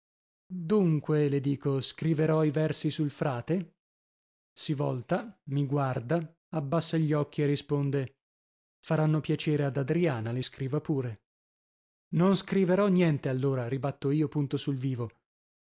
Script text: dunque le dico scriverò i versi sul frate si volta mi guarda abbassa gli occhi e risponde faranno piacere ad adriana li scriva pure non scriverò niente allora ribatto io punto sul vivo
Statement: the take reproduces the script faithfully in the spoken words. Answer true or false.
true